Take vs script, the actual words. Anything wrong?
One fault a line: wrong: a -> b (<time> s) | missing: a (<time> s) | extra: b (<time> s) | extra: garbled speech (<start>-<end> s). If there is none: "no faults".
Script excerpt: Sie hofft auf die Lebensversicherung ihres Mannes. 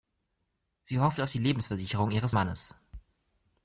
no faults